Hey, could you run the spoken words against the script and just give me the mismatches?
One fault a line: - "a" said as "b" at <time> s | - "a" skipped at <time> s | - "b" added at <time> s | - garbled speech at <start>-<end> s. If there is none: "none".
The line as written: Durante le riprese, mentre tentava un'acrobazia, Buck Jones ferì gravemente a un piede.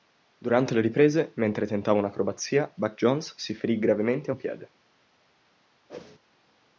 - "si" added at 3.4 s